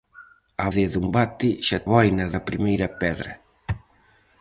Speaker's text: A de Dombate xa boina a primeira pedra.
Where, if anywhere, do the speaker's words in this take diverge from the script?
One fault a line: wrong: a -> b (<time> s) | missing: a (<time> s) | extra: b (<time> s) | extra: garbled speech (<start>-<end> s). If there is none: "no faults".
no faults